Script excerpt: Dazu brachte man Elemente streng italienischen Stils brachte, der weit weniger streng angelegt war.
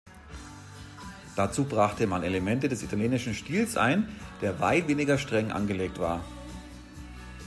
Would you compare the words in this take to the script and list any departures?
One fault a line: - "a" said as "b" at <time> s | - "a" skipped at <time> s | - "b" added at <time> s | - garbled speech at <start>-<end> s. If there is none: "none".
- "streng" said as "des" at 2.7 s
- "brachte" said as "ein" at 3.8 s